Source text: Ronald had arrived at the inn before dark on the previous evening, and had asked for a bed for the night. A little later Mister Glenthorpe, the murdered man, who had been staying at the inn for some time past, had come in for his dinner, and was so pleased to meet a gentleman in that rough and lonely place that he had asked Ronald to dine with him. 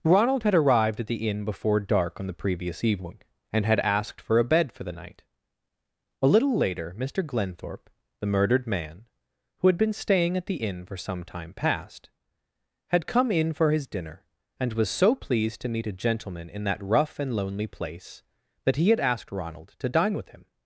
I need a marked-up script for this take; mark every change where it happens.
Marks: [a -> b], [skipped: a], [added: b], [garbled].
Ronald had arrived at the inn before dark on the previous evening, and had asked for a bed for the night. A little later Mister Glenthorpe, the murdered man, who had been staying at the inn for some time past, had come in for his dinner, and was so pleased to meet a gentleman in that rough and lonely place that he had asked Ronald to dine with him.